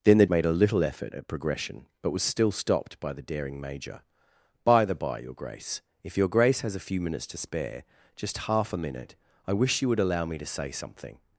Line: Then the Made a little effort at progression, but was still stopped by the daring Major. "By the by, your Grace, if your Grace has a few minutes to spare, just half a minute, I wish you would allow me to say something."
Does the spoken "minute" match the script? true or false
true